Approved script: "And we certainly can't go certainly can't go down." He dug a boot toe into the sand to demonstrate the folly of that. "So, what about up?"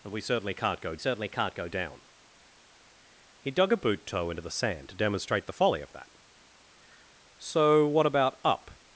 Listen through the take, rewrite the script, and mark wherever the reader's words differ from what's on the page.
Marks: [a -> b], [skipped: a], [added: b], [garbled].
"And we certainly can't go certainly can't go down." He dug a boot toe into the sand to demonstrate the folly of that. "So, what about up?"